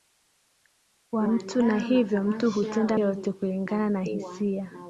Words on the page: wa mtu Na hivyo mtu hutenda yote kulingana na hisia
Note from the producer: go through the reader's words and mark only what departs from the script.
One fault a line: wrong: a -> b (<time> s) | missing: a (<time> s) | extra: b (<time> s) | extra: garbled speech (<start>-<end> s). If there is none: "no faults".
no faults